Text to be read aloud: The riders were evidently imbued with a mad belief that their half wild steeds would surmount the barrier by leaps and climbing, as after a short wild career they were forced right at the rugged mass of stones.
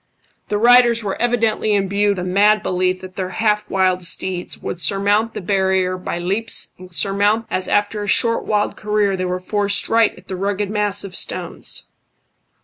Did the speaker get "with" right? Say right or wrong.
wrong